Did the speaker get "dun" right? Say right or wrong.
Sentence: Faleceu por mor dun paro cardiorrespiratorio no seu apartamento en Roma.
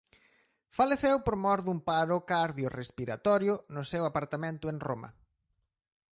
right